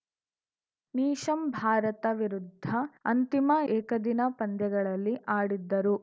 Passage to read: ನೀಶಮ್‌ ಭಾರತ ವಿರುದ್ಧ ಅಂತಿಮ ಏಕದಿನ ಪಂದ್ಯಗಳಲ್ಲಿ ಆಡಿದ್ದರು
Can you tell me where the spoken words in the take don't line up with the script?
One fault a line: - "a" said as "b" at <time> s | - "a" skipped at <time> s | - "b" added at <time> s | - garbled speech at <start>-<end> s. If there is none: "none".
none